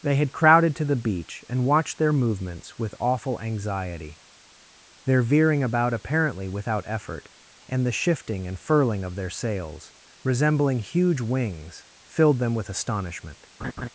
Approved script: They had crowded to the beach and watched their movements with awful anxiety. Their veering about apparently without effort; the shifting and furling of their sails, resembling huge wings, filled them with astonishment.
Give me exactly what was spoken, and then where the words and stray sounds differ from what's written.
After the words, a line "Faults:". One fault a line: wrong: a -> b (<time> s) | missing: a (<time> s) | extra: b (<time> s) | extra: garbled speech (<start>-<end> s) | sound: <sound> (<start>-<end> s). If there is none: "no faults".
They had crowded to the beach and watched their movements with awful anxiety. Their veering about apparently without effort; and the shifting and furling of their sails, resembling huge wings, filled them with astonishment.
Faults:
extra: and (7.7 s)
sound: laugh (13.6-13.9 s)